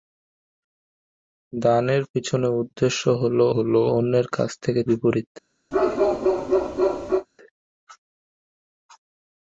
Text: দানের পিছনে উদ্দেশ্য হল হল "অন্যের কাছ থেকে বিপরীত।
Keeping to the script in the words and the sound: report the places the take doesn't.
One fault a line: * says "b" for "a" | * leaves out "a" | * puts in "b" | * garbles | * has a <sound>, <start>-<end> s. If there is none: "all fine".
* has a bark, 5.7-7.3 s